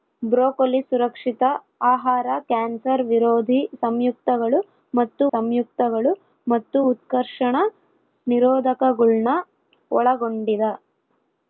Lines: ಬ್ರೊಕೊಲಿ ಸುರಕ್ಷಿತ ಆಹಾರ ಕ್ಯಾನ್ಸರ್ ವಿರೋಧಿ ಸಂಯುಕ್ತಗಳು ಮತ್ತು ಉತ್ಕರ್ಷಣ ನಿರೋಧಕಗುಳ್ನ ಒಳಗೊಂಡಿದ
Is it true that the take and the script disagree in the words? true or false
true